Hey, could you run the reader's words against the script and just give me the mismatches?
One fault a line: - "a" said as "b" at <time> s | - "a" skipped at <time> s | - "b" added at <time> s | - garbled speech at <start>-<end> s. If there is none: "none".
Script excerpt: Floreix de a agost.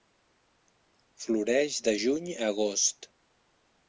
- "juny" added at 2.0 s